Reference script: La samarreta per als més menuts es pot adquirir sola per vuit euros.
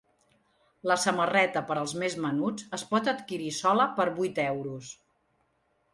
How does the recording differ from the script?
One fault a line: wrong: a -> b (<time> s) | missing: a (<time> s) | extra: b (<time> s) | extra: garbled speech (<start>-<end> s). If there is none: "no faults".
no faults